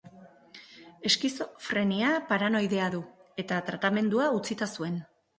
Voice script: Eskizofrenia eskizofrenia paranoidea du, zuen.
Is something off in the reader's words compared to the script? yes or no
yes